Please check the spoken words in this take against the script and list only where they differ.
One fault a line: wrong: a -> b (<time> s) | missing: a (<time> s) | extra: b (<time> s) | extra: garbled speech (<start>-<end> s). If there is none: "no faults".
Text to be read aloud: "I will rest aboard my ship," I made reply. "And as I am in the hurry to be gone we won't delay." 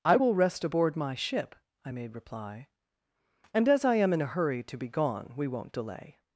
wrong: the -> a (4.2 s)